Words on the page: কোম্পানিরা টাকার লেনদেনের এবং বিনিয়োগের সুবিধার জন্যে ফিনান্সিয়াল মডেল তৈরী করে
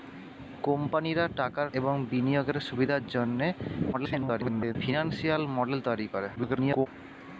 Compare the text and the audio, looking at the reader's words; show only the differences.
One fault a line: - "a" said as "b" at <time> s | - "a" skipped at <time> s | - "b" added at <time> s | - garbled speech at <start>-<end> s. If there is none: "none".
- "লেনদেনের" skipped at 1.7 s
- garbled speech at 3.9-4.8 s
- garbled speech at 6.4-6.9 s